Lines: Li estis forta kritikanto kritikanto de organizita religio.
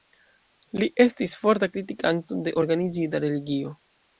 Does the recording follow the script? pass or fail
fail